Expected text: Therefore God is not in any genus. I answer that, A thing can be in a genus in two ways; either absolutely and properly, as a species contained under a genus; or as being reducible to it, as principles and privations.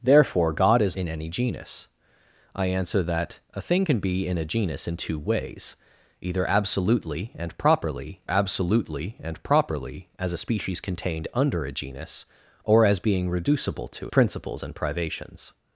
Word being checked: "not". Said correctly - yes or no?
no